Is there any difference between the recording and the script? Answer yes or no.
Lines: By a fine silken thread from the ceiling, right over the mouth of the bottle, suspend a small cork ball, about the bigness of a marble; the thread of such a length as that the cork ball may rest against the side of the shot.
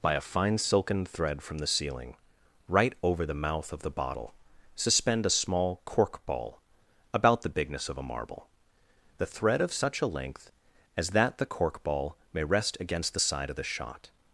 no